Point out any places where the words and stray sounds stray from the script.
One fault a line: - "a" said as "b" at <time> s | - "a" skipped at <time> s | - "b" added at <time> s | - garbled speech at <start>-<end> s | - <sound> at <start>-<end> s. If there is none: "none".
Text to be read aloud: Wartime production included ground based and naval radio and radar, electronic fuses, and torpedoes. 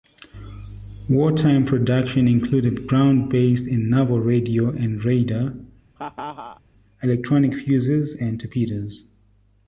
- laugh at 6.0-6.6 s